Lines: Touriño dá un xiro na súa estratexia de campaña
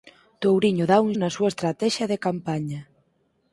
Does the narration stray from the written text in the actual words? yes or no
yes